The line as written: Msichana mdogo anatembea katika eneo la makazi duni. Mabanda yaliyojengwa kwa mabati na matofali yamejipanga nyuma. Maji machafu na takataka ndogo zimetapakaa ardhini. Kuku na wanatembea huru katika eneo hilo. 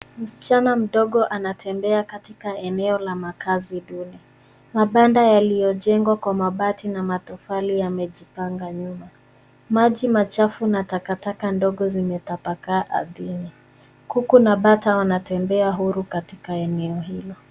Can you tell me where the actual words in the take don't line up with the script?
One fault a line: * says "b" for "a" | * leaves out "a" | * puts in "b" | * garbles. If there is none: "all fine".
* puts in "bata"